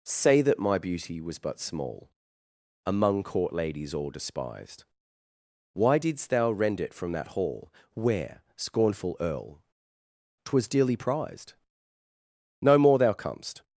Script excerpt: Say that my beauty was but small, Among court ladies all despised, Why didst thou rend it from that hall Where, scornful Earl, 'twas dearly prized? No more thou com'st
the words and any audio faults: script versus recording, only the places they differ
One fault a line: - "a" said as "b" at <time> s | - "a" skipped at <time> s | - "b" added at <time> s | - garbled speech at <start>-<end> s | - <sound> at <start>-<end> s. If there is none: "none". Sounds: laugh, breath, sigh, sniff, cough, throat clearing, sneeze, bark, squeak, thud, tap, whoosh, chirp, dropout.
none